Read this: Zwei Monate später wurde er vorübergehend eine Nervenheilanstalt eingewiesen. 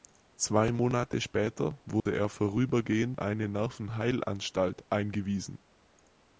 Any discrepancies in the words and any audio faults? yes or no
yes